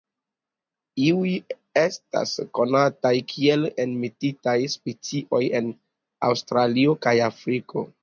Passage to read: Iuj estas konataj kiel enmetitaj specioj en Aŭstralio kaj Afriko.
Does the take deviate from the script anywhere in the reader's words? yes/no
no